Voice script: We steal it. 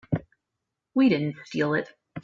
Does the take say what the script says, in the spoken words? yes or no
no